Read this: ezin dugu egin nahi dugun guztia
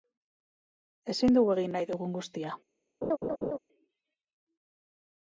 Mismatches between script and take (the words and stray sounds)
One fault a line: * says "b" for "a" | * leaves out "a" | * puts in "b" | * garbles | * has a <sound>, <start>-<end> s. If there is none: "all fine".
* has a laugh, 3.0-3.6 s